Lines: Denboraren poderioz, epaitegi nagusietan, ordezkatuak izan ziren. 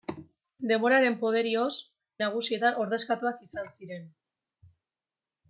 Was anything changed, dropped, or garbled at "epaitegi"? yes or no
yes